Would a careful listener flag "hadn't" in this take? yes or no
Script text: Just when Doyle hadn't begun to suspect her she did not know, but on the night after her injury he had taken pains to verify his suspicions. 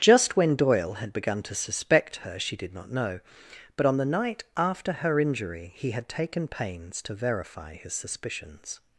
yes